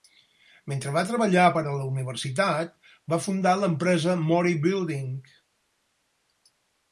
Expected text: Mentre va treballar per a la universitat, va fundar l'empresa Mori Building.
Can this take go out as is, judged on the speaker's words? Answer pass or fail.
pass